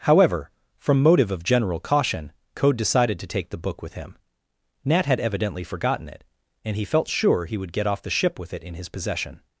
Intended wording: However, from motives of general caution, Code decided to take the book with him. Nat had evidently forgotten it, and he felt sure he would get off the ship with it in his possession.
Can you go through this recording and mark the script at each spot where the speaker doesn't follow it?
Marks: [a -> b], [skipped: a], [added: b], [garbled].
However, from [motives -> motive] of general caution, Code decided to take the book with him. Nat had evidently forgotten it, and he felt sure he would get off the ship with it in his possession.